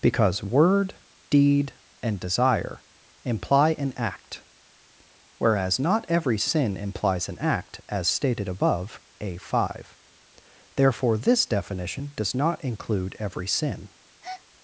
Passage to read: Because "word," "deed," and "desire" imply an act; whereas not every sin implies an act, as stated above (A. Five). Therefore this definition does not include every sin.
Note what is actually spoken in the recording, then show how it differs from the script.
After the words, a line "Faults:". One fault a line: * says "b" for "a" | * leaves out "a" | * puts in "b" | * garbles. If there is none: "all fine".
Because "word," "deed," and "desire" imply an act; whereas not every sin implies an act, as stated above (A. Five). Therefore this definition does not include every sin.
Faults:
all fine